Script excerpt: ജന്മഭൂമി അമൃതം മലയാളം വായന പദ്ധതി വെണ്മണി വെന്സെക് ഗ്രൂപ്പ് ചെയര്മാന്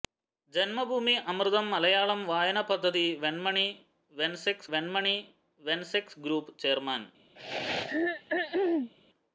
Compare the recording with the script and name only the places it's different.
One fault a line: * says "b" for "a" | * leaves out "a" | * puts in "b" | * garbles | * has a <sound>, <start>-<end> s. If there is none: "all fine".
* puts in "വെണ്മണി വെന്സെക്"
* has a throat clearing, 7.4-8.9 s